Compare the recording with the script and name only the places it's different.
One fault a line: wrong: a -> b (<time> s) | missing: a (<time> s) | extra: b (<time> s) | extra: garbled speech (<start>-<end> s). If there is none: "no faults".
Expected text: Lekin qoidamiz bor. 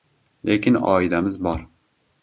no faults